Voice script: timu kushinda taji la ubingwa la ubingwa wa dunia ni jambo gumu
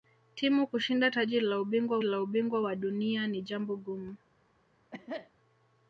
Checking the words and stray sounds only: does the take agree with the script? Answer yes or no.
no